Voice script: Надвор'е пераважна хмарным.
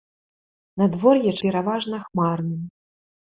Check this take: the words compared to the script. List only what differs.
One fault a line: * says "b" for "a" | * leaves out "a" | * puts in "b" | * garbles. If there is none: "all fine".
all fine